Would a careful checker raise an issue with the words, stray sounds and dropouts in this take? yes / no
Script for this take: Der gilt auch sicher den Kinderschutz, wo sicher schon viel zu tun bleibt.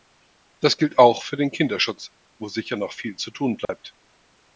yes